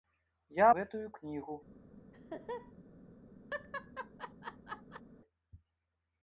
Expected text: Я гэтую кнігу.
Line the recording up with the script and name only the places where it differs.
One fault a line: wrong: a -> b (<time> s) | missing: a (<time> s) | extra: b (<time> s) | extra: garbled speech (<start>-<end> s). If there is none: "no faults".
no faults